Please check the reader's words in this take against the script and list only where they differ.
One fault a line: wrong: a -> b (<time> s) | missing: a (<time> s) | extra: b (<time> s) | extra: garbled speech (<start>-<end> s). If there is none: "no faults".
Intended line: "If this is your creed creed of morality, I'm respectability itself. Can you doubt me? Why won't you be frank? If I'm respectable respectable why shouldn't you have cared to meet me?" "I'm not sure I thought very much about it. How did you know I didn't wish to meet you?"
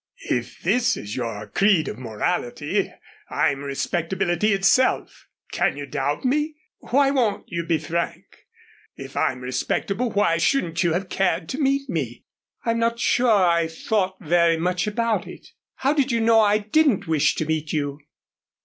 missing: creed (1.9 s)
missing: respectable (10.1 s)